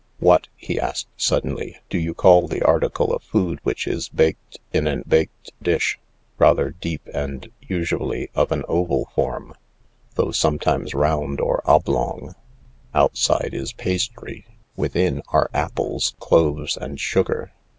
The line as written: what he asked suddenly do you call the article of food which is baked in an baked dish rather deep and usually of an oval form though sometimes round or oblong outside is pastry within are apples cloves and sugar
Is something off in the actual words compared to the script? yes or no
no